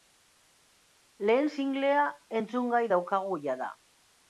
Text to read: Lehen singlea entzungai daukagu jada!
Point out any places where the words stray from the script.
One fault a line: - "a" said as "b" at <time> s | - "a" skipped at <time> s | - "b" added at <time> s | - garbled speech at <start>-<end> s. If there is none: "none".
none